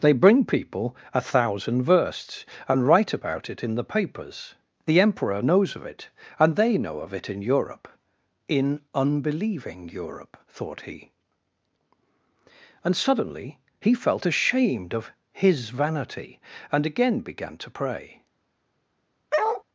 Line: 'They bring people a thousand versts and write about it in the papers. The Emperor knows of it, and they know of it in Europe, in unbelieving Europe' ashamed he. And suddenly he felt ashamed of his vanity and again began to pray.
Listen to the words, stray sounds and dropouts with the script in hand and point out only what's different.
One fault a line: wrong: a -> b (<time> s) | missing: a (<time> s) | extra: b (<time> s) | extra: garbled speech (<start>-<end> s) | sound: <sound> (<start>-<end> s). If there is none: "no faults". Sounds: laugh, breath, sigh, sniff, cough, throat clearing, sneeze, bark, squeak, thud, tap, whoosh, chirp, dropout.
wrong: ashamed -> thought (10.5 s)
sound: bark (19.3-19.6 s)